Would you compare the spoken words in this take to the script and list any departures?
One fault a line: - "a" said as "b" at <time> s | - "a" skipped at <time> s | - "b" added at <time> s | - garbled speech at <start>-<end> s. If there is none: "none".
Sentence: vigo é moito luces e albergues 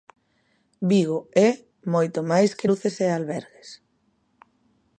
- "máis que" added at 2.3 s